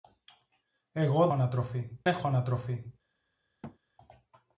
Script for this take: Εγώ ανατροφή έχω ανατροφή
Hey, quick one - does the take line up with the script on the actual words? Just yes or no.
yes